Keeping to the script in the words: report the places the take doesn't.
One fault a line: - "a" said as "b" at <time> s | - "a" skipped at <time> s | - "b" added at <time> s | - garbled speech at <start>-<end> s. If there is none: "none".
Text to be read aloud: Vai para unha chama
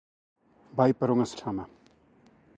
none